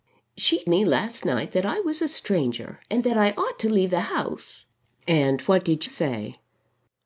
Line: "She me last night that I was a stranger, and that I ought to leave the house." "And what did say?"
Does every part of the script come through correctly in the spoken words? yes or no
yes